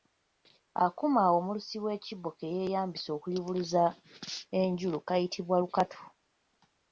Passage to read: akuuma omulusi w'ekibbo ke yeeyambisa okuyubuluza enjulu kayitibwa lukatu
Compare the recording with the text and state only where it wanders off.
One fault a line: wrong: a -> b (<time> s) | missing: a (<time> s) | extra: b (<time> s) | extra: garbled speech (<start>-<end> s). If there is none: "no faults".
no faults